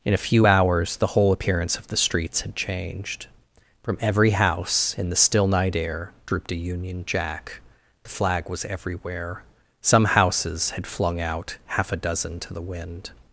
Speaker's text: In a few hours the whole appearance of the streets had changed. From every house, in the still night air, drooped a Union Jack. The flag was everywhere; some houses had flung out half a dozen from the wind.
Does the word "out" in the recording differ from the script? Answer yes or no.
no